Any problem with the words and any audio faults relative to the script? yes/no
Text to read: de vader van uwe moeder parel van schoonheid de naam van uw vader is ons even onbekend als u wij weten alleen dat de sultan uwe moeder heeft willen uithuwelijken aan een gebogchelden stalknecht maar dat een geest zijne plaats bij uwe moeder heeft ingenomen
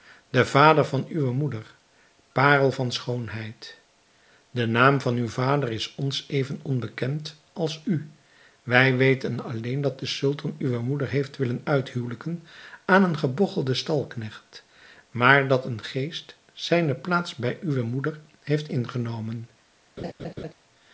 yes